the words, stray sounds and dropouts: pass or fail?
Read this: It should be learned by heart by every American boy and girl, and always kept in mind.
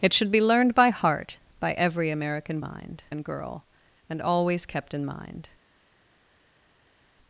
fail